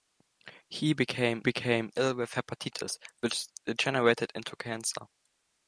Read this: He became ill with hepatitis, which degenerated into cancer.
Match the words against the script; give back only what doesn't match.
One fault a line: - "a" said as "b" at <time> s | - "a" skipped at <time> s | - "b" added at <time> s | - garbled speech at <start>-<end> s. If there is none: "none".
- "became" added at 1.4 s